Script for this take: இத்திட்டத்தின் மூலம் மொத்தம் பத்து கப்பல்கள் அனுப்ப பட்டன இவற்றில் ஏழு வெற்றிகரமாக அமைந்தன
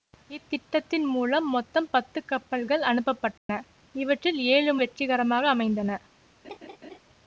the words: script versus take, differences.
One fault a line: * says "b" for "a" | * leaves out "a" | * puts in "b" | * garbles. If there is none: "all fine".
all fine